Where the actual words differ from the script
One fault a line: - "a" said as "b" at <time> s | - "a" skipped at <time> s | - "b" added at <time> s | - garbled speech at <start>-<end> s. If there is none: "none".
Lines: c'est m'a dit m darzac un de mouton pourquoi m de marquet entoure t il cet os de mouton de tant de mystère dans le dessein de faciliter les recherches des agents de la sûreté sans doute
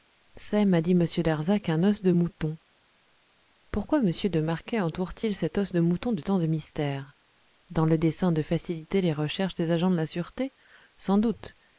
- "os" added at 1.8 s